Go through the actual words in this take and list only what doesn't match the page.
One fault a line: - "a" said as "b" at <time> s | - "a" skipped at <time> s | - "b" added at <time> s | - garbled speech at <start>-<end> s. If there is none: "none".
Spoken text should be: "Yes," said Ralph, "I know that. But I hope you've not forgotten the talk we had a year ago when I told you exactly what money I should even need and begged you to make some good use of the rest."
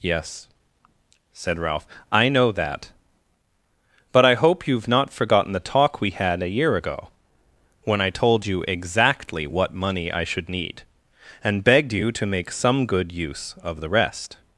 - "even" skipped at 10.5 s